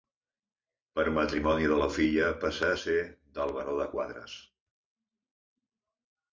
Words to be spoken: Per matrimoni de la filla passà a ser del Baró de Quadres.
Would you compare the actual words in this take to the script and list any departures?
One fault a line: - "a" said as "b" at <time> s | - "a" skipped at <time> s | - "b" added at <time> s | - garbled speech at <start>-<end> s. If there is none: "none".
none